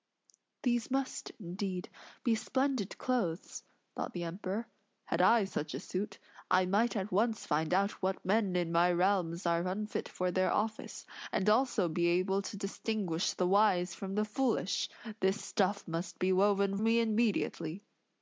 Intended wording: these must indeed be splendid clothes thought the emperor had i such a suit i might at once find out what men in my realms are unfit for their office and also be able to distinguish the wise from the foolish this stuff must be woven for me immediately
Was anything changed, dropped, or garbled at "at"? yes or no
no